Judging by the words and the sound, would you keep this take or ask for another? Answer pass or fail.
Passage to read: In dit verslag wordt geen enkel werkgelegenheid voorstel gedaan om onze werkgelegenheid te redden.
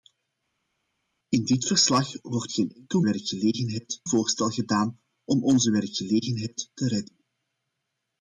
pass